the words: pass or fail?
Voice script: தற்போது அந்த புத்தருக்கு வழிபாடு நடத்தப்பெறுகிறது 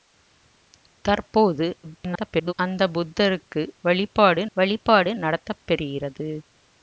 fail